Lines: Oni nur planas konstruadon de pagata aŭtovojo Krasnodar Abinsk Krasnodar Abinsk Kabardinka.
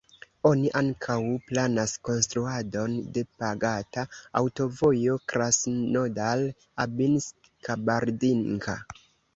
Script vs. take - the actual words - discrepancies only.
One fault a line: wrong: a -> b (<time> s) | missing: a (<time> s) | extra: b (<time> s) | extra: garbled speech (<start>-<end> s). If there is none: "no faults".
wrong: nur -> ankaŭ (0.8 s)
missing: Krasnodar Abinsk (7.5 s)